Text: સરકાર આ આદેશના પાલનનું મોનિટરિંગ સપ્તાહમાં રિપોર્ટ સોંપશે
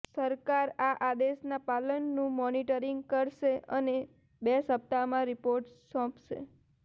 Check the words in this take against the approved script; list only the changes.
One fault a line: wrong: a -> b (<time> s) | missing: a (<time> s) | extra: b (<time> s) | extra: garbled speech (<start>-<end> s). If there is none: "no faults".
extra: કરશે અને બે (3.1 s)